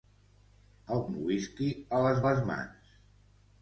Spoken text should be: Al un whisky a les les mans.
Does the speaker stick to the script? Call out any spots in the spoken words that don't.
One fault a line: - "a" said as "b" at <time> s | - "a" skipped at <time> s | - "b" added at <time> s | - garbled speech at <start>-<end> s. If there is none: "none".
none